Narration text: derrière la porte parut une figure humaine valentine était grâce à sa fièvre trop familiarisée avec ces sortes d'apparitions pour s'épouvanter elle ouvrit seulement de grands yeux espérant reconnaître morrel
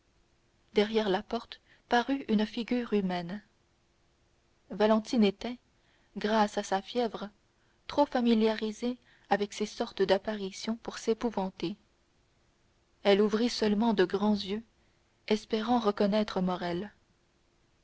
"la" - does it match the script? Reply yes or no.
yes